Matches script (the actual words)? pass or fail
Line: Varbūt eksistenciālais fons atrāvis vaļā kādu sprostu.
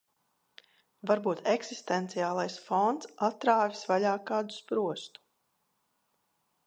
pass